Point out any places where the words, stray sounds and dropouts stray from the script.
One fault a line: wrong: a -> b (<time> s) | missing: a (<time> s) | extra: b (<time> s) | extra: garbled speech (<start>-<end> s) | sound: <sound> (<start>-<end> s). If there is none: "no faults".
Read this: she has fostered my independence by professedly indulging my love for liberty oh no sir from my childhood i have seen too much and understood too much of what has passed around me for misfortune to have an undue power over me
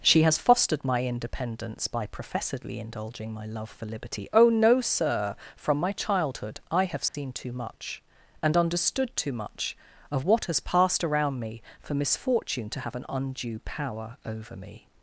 sound: dropout (7.1-7.1 s)